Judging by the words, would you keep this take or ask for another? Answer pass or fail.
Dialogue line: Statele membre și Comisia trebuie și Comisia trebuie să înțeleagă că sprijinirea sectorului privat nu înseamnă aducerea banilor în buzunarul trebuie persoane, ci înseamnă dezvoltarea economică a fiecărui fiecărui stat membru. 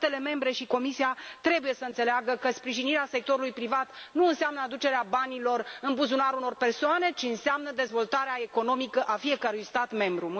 fail